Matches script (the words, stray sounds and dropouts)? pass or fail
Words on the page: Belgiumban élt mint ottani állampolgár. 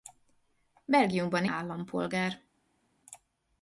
fail